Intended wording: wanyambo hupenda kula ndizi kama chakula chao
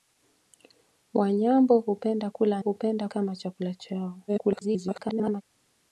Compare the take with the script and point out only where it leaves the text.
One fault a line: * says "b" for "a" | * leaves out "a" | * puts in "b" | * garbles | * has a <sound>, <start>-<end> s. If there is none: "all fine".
* says "hupenda" for "ndizi"
* garbles